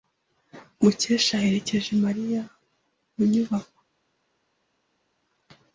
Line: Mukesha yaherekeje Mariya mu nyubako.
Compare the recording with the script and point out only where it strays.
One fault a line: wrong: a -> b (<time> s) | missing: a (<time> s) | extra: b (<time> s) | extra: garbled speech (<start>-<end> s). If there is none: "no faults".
no faults